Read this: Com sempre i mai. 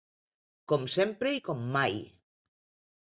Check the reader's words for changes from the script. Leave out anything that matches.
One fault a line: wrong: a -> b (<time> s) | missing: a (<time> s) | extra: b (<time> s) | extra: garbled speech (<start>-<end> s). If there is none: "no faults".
extra: com (1.5 s)